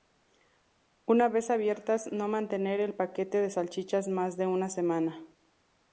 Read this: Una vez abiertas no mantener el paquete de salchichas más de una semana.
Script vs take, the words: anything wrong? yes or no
no